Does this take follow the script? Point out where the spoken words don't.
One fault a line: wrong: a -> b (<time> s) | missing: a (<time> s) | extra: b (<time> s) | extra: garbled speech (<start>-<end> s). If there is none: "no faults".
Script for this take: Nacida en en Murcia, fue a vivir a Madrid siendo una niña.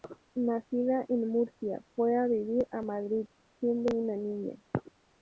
missing: en (1.3 s)